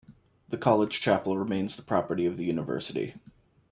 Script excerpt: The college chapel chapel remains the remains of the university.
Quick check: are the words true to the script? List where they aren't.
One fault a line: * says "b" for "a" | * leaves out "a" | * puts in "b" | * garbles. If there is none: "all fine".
* leaves out "chapel"
* says "property" for "remains"